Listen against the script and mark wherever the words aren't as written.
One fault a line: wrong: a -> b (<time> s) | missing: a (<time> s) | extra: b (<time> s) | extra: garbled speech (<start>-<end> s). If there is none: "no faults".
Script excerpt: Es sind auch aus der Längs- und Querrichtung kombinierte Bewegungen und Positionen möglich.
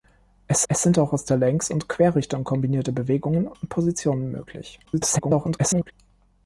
extra: es (0.7 s)
extra: garbled speech (4.8-5.9 s)